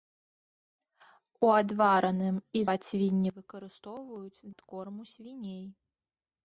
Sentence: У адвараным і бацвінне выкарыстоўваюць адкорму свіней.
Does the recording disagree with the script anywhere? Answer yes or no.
no